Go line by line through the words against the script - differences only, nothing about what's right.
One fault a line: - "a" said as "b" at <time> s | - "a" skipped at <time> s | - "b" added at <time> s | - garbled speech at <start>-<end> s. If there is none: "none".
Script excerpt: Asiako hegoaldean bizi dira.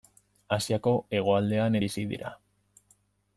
none